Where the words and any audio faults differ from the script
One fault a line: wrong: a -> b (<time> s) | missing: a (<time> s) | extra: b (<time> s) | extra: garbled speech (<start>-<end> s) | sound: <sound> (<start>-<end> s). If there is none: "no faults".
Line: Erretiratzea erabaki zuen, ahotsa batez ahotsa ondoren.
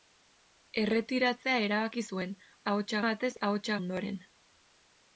no faults